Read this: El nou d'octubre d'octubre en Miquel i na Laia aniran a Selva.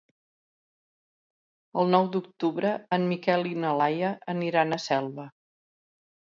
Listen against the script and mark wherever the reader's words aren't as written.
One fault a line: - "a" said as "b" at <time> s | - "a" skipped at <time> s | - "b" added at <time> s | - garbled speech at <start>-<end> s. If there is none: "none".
- "d'octubre" skipped at 2.7 s